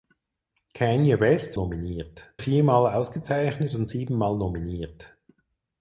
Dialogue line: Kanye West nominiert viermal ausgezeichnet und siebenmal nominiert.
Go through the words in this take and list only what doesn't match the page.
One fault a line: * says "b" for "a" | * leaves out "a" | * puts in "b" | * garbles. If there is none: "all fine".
all fine